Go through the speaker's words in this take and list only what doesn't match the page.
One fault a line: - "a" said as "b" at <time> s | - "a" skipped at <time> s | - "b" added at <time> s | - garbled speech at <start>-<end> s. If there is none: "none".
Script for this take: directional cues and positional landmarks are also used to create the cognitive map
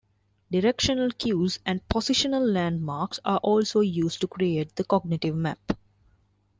none